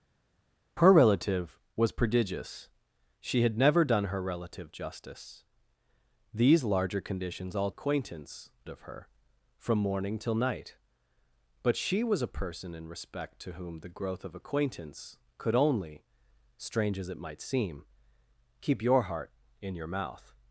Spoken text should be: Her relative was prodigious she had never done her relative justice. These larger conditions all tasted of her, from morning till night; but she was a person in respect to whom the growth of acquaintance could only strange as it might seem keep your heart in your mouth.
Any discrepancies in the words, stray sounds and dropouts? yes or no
yes